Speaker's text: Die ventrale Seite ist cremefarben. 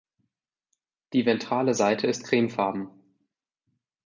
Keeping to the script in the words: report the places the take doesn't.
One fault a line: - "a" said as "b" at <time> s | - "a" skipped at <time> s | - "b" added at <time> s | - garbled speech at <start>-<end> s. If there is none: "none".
none